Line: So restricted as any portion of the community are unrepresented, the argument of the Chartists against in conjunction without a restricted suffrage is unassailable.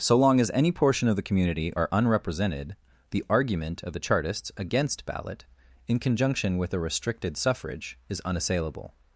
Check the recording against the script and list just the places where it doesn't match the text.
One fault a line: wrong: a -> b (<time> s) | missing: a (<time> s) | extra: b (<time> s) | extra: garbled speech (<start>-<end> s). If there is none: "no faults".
wrong: restricted -> long (0.2 s)
extra: ballot (5.1 s)
wrong: without -> with (6.6 s)